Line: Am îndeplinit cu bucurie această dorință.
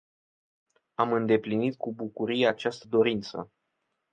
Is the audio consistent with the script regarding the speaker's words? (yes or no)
yes